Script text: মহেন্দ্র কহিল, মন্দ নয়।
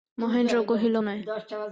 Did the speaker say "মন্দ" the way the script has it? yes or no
no